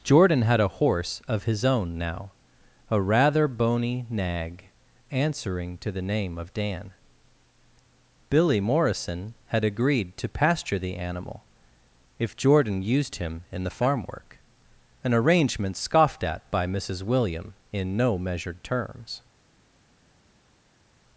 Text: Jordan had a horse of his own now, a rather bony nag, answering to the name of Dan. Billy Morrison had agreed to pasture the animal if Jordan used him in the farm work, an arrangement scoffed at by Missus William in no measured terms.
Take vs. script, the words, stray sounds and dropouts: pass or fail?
pass